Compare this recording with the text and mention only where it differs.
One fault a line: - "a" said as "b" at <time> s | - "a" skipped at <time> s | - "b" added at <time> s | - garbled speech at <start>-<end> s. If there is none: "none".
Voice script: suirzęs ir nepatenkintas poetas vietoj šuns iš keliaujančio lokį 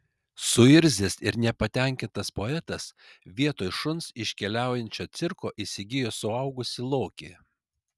- "cirko įsigijo suaugusį" added at 5.2 s